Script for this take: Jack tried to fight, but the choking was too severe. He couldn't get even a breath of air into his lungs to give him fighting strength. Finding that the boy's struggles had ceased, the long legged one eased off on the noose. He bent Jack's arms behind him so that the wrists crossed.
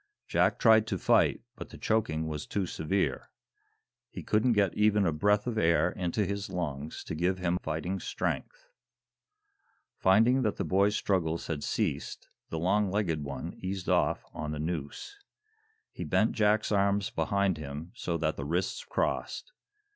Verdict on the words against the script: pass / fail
pass